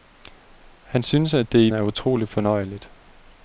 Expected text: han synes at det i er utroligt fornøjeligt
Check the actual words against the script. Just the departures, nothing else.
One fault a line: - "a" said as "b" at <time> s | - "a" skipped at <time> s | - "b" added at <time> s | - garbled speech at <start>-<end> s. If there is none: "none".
none